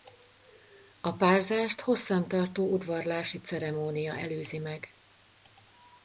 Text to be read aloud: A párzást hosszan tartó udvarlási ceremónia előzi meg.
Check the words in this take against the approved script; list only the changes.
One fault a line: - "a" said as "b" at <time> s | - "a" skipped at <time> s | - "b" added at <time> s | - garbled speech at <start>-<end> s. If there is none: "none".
none